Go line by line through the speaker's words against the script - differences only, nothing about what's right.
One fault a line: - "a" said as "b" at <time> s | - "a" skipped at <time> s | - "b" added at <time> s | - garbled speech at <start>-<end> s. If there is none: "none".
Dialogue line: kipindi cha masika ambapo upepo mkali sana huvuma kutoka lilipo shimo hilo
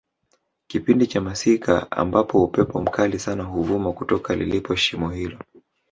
none